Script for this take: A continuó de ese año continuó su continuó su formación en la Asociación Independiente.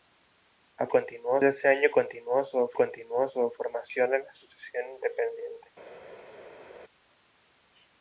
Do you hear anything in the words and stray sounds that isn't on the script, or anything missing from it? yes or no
no